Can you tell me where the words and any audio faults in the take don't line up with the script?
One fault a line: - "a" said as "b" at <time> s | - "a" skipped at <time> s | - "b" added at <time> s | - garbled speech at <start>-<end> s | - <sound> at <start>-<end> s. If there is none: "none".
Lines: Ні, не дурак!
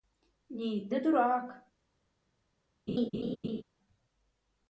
- laugh at 2.9-3.6 s